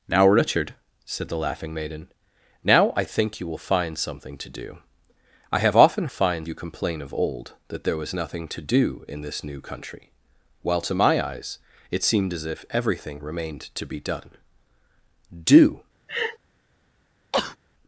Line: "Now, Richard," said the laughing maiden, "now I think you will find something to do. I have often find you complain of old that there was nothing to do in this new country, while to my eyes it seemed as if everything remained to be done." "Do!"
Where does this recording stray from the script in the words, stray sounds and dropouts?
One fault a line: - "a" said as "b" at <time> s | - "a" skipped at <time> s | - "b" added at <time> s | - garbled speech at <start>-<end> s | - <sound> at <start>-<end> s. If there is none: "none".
- laugh at 16.1-16.4 s
- sneeze at 17.3-17.6 s